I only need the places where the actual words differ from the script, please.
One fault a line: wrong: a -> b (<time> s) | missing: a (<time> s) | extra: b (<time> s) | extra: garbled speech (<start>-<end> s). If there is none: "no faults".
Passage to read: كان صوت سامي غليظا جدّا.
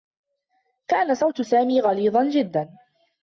no faults